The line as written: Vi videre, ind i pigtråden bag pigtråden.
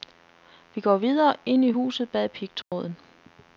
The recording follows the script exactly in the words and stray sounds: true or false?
false